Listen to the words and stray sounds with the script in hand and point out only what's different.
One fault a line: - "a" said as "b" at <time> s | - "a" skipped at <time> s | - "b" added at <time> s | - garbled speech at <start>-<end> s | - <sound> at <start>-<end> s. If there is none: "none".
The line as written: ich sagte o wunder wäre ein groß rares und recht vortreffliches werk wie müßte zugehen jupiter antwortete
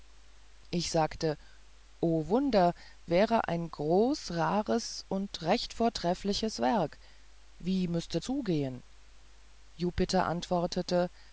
none